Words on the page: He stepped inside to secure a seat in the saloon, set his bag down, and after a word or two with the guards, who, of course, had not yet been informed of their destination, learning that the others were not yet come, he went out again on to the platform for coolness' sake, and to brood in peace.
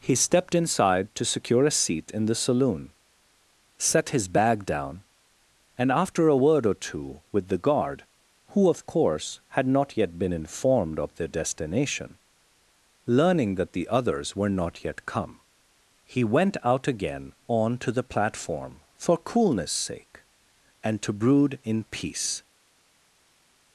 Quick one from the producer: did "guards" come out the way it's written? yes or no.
no